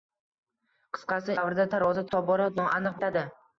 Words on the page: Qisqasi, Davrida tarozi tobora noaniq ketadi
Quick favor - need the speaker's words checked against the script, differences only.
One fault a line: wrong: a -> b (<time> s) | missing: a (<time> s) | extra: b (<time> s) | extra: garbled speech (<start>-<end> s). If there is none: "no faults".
no faults